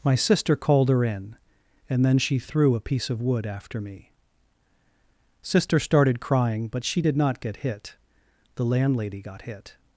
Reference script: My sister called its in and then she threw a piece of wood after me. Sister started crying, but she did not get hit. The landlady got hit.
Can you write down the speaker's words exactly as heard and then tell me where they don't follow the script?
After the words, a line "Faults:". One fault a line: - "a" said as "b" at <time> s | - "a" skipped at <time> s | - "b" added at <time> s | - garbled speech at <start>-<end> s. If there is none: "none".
My sister called her in and then she threw a piece of wood after me. Sister started crying, but she did not get hit. The landlady got hit.
Faults:
- "its" said as "her" at 0.9 s